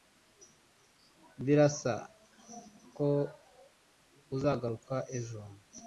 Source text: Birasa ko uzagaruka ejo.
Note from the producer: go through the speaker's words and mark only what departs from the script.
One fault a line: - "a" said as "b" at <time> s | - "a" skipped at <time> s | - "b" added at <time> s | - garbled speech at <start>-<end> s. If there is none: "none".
none